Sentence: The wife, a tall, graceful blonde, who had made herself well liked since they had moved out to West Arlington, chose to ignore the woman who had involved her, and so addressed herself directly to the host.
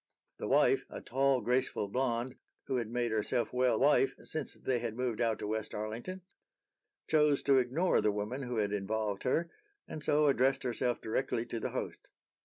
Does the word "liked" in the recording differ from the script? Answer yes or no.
yes